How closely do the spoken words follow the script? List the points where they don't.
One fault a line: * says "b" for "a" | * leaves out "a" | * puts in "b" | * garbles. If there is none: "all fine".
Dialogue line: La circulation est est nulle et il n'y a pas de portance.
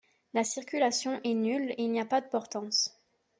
* leaves out "est"